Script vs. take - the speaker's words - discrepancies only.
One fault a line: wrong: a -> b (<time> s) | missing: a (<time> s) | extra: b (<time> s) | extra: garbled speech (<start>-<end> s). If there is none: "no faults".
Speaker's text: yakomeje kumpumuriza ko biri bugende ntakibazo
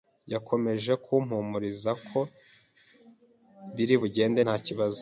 no faults